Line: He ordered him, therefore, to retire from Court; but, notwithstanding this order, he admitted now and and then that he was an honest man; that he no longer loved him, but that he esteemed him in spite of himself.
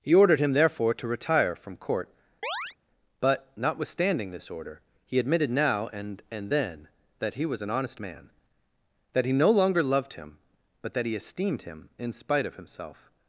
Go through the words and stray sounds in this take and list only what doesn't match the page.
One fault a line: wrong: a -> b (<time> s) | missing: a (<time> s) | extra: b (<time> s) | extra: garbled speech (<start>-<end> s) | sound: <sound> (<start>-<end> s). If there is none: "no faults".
sound: chirp (2.4-2.8 s)